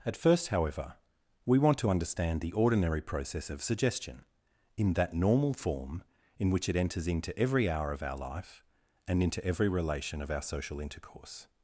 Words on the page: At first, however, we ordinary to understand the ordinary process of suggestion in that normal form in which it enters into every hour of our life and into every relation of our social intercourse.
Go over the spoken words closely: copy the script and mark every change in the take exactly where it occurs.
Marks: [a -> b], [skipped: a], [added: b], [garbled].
At first, however, we [ordinary -> want] to understand the ordinary process of suggestion in that normal form in which it enters into every hour of our life and into every relation of our social intercourse.